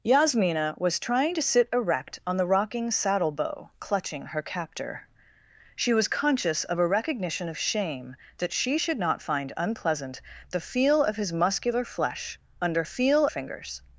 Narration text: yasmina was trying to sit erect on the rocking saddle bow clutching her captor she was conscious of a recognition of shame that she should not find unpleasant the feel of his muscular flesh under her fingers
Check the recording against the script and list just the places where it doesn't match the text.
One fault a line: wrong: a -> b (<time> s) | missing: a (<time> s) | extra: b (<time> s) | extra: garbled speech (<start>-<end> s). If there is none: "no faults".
wrong: her -> feel (12.8 s)